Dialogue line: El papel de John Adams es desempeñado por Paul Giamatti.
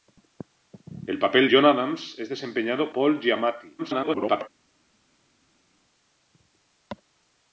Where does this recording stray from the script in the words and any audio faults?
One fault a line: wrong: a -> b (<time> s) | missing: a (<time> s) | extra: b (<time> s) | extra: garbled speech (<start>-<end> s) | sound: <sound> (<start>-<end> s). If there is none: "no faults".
missing: de (1.5 s)
missing: por (2.9 s)
extra: garbled speech (3.8-4.5 s)